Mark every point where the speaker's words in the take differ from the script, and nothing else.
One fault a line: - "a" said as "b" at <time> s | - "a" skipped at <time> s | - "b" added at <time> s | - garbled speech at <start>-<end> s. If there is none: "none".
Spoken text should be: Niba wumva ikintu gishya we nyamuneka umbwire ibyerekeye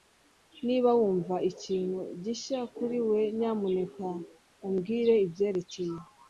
- "kuri" added at 2.8 s